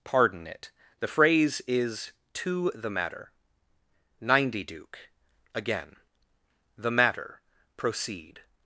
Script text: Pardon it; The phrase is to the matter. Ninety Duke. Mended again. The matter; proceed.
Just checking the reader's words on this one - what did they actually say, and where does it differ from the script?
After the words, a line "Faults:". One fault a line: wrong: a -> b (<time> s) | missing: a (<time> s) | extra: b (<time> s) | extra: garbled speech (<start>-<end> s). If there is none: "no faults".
Pardon it; The phrase is to the matter. Ninety Duke. again. The matter; proceed.
Faults:
missing: Mended (5.0 s)